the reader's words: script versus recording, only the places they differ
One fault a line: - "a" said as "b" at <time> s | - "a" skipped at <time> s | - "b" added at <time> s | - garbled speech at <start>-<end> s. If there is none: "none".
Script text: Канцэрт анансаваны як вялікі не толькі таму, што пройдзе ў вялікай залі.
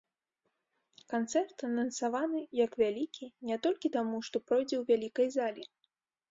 none